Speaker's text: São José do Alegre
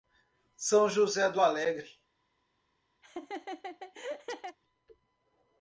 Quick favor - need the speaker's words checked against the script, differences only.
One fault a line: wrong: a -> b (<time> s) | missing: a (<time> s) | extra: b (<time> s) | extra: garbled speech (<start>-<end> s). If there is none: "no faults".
no faults